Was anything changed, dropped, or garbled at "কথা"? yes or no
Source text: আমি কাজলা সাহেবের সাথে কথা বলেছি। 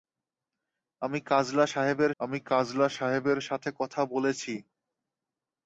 no